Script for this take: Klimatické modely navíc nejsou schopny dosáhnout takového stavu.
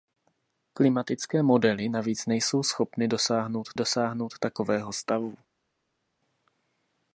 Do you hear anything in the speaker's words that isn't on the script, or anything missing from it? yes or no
yes